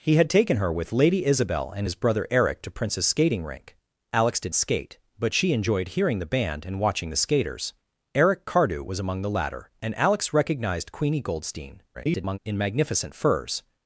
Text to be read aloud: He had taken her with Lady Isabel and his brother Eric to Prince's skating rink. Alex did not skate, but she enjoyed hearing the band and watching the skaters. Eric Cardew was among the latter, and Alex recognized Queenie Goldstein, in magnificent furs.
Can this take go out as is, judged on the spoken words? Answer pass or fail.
fail